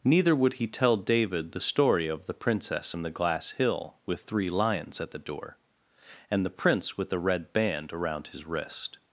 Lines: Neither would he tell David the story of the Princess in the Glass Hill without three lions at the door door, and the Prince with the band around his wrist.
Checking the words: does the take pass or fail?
fail